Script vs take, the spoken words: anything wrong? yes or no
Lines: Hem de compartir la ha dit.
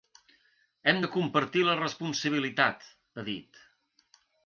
yes